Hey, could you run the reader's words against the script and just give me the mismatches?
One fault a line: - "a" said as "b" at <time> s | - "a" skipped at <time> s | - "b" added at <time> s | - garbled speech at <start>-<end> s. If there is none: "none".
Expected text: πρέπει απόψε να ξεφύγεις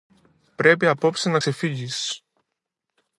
none